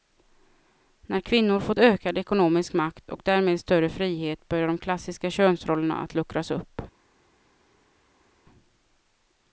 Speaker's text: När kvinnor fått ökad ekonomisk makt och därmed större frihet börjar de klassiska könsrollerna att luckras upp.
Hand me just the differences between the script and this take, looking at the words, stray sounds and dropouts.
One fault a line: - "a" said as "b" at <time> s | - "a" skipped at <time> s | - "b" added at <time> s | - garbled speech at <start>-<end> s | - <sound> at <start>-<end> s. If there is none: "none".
none